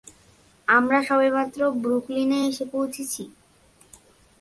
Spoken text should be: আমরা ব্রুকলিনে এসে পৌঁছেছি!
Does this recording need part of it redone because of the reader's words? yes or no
yes